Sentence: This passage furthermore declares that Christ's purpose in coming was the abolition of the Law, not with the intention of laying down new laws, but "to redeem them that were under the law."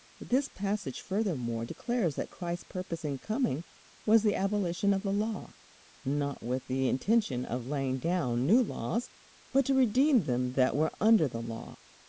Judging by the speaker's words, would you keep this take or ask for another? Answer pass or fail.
pass